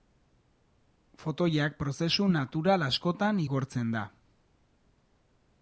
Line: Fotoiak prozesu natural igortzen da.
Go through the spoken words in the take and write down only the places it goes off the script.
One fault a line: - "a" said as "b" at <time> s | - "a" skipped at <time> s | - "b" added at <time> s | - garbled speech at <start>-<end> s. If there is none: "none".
- "askotan" added at 2.9 s